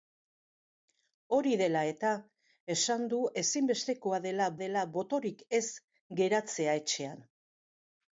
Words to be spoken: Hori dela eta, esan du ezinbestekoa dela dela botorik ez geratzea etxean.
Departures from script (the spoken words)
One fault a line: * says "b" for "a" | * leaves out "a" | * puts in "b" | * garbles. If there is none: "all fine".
all fine